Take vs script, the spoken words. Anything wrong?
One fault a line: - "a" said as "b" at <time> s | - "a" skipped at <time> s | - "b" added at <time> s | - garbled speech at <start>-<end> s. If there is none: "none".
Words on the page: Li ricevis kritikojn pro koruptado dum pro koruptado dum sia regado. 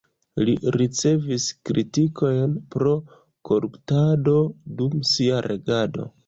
- "pro koruptado dum" skipped at 5.0 s